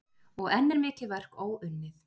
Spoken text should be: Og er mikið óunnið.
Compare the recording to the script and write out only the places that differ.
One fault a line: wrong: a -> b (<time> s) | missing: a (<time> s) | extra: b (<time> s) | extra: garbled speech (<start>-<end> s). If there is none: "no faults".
extra: enn (0.6 s)
extra: verk (1.1 s)